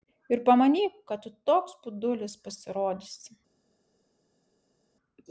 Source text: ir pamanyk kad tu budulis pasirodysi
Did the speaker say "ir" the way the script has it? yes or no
yes